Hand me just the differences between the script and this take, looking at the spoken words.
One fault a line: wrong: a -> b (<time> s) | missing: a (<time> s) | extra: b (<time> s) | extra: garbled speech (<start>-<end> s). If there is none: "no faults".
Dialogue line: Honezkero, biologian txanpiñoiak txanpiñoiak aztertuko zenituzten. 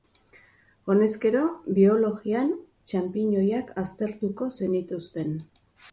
missing: txanpiñoiak (3.7 s)